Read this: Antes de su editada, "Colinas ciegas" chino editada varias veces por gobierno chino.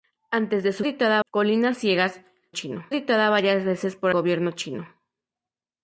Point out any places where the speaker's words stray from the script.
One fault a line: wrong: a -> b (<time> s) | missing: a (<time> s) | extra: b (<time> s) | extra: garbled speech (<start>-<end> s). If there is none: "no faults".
no faults